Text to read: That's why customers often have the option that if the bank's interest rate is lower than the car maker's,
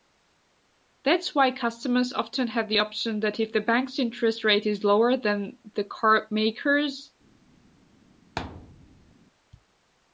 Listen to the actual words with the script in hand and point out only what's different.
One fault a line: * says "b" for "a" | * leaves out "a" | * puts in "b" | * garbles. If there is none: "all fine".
all fine